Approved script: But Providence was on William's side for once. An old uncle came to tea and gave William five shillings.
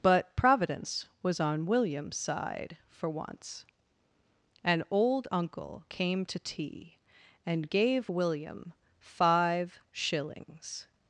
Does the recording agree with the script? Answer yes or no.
yes